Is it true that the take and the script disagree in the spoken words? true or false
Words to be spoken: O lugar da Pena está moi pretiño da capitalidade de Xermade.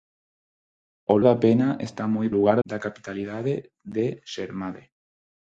true